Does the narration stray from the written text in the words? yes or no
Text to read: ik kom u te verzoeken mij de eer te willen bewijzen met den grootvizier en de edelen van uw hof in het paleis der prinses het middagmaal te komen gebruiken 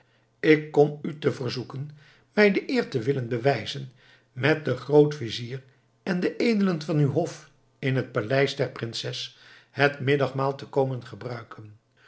no